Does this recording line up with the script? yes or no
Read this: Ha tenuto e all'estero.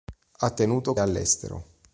yes